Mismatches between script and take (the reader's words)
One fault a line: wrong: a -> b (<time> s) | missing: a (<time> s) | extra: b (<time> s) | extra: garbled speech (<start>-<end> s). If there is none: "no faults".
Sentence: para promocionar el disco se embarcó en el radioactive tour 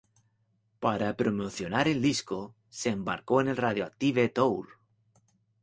no faults